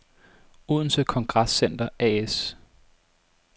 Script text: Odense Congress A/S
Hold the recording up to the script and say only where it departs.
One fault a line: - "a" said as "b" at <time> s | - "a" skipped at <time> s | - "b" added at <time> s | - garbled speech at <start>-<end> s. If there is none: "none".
- "Center" added at 1.5 s